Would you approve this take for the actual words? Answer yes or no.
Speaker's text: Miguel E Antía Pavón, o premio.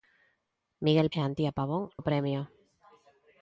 yes